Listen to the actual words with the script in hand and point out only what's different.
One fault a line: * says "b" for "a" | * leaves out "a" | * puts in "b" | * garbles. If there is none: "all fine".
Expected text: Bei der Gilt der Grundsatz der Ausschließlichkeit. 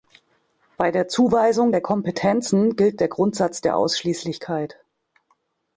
* puts in "Zuweisung der Kompetenzen"